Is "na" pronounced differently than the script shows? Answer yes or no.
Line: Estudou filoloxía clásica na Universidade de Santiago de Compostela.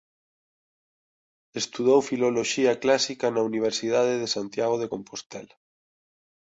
no